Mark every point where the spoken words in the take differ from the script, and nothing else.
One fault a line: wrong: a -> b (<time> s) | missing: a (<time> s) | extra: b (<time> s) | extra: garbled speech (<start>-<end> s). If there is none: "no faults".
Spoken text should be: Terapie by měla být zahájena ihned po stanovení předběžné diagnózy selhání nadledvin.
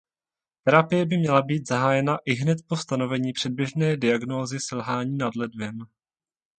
no faults